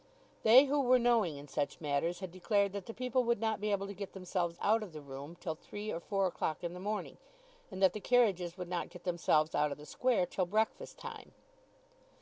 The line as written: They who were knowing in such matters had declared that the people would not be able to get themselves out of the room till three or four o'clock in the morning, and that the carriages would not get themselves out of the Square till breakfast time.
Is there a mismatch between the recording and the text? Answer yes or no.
no